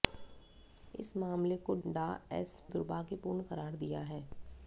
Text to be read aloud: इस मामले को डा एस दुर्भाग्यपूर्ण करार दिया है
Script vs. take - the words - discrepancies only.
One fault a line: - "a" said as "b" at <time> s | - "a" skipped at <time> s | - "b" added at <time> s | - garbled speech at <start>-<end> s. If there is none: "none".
none